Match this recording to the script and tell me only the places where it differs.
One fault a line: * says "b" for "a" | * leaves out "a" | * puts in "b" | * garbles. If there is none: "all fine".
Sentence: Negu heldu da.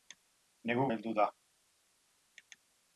all fine